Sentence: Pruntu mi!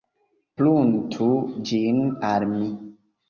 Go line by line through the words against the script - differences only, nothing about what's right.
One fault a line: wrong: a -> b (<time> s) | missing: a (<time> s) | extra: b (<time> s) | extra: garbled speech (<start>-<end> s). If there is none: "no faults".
extra: ĝin al (1.7 s)